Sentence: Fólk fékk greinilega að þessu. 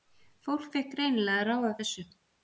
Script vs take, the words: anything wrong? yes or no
yes